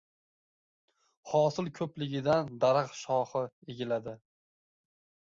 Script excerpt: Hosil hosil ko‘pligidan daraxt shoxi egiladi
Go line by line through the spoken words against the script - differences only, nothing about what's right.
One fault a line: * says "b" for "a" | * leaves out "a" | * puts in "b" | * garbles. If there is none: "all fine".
* leaves out "hosil"